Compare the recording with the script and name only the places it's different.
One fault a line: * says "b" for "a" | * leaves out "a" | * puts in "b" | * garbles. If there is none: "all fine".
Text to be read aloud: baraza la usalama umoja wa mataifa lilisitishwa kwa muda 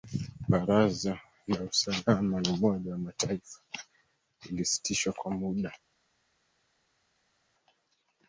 all fine